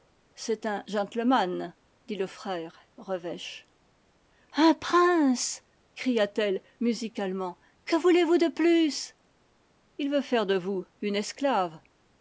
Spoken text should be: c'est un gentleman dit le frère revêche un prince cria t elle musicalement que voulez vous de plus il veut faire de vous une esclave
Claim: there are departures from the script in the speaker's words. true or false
false